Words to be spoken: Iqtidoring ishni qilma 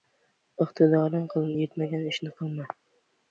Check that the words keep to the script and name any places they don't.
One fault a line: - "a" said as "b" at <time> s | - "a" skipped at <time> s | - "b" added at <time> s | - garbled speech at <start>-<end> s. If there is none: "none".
- "yetmagan" added at 1.6 s